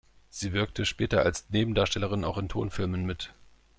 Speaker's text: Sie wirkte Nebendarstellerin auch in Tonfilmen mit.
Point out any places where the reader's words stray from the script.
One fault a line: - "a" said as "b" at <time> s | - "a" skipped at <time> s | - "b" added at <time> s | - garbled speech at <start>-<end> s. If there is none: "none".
- "später als" added at 0.9 s